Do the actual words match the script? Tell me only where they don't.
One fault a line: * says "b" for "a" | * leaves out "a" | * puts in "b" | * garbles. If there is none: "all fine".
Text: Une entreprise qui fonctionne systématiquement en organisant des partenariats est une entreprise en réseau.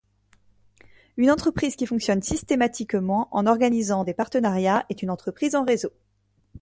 all fine